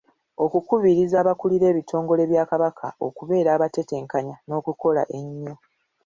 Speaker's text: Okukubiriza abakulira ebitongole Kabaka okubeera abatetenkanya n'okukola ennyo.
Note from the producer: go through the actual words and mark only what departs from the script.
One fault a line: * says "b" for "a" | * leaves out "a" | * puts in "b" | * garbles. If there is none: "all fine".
* puts in "bya"